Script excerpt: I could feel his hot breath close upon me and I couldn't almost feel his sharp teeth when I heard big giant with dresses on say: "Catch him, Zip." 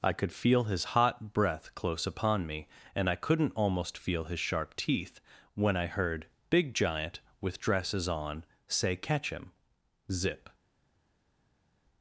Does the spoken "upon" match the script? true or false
true